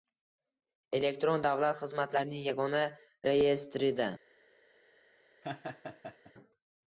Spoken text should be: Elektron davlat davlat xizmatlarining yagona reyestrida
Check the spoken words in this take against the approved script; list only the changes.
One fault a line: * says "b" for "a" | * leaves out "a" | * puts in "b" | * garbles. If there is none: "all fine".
* leaves out "davlat"